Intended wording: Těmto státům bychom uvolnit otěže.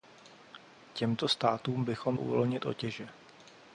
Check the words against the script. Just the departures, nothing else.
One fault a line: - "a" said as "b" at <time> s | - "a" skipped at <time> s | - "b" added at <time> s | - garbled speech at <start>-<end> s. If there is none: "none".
none